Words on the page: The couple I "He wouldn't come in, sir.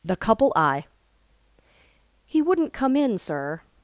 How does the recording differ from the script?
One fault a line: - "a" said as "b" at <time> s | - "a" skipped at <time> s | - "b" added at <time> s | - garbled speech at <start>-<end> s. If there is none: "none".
none